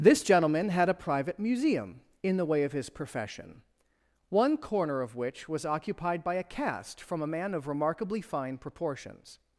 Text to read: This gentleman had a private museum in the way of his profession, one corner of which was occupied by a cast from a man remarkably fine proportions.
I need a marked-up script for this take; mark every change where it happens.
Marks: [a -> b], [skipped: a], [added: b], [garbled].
This gentleman had a private museum in the way of his profession, one corner of which was occupied by a cast from a man [added: of] remarkably fine proportions.